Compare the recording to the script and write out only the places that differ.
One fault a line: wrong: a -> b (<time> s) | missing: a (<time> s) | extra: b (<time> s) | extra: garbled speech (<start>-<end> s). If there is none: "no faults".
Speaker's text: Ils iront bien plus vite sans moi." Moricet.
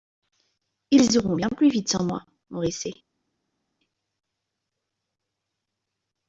no faults